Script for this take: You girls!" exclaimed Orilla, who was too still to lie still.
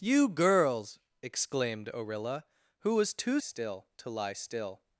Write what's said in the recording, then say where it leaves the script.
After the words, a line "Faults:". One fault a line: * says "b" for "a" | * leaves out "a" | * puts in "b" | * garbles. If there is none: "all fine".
You girls!" exclaimed Orilla, who was too still to lie still.
Faults:
all fine